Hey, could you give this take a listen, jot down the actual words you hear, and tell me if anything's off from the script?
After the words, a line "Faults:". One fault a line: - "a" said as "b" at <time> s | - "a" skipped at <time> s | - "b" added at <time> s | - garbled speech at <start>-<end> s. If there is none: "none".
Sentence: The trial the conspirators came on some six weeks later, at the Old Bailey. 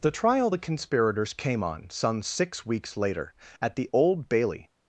The trial the conspirators came on some six weeks later, at the Old Bailey.
Faults:
none